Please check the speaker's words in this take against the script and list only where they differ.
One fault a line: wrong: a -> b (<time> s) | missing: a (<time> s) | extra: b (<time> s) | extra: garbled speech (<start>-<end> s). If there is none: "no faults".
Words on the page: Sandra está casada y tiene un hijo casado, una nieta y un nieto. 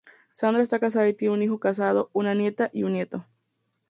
no faults